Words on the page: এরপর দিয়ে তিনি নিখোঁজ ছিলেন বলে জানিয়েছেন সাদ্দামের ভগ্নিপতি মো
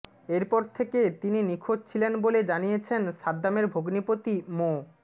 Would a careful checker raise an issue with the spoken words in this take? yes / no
yes